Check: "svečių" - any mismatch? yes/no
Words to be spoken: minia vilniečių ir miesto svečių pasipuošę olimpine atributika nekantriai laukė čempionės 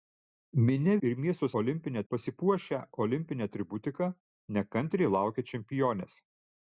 yes